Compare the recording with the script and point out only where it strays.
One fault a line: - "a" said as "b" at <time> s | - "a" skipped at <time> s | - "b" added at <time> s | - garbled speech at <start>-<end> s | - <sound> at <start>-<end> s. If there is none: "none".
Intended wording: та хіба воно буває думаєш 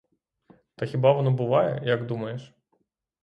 - "як" added at 1.9 s